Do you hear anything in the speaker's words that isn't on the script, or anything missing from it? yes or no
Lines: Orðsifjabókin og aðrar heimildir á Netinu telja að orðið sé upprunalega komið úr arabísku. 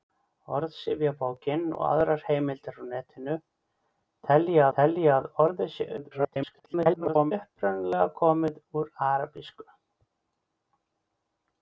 yes